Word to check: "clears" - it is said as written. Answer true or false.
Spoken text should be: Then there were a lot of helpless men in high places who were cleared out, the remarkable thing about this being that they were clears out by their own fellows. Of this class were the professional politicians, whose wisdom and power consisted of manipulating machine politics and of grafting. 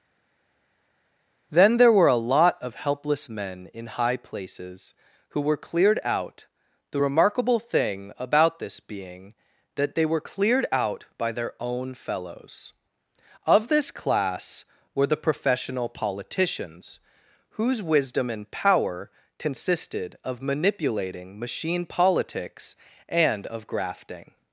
false